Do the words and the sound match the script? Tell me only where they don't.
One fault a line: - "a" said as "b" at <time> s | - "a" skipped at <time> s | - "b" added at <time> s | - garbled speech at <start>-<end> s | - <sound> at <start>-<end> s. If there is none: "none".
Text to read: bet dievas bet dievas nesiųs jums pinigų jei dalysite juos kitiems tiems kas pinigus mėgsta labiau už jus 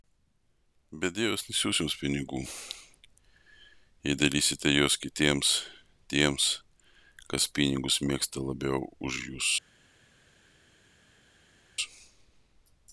- "bet dievas" skipped at 1.4 s